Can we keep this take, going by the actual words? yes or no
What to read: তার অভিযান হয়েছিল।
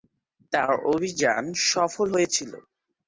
no